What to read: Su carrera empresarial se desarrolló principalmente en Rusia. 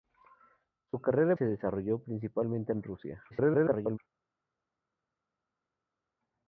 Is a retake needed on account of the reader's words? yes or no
yes